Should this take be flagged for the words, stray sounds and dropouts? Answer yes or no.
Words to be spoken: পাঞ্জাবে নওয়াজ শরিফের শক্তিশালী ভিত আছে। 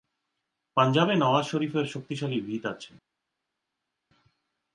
no